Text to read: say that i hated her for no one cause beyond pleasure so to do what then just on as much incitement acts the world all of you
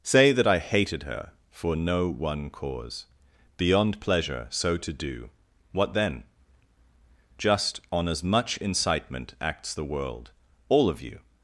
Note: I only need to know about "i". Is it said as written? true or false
true